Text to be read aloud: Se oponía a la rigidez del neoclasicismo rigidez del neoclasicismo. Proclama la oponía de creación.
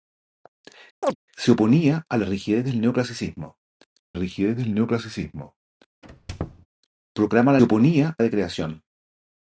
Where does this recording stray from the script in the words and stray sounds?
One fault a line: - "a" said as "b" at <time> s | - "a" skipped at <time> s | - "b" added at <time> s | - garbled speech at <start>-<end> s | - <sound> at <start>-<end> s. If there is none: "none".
- chirp at 1.0-1.2 s
- squeak at 6.0-6.7 s